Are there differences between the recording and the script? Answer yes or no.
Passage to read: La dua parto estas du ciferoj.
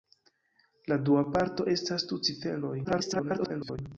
yes